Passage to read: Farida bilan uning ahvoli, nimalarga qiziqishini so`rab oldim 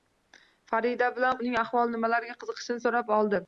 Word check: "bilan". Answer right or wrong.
right